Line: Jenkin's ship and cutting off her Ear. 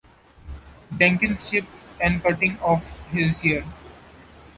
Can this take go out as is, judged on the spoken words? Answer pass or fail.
fail